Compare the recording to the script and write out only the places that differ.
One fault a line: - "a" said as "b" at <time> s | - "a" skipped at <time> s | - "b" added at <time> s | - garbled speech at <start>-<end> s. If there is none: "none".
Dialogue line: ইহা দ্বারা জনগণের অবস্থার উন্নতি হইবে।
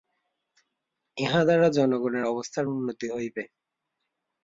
none